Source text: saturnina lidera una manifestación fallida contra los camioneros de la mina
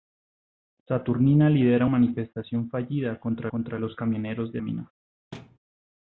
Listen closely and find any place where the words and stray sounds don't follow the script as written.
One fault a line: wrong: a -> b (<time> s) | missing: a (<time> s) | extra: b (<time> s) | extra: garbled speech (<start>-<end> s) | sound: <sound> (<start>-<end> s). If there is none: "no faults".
missing: una (1.9 s)
extra: contra (3.5 s)
missing: la (4.6 s)
sound: thud (5.3-5.6 s)